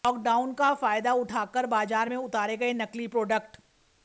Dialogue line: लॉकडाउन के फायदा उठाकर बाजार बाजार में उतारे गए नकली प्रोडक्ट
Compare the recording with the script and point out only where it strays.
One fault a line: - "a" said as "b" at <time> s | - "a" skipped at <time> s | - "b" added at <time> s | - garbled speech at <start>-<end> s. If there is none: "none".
- "के" said as "का" at 0.5 s
- "बाजार" skipped at 2.1 s